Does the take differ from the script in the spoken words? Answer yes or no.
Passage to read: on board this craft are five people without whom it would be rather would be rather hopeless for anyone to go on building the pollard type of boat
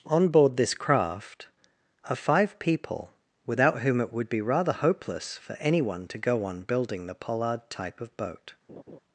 yes